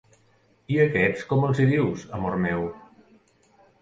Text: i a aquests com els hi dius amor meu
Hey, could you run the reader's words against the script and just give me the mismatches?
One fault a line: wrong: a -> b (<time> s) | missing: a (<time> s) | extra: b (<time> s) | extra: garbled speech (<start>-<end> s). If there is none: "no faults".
no faults